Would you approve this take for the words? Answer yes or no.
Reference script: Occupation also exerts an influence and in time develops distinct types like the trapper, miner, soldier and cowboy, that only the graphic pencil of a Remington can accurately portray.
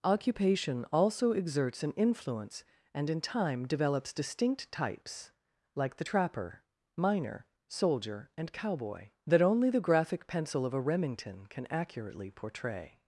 yes